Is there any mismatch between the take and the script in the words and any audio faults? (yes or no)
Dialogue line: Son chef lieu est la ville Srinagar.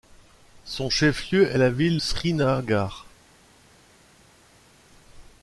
no